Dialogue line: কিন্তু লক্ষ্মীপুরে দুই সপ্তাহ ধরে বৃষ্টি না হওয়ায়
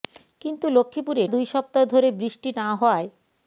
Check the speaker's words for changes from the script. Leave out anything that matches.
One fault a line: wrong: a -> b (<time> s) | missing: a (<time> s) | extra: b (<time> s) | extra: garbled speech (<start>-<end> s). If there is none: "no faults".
no faults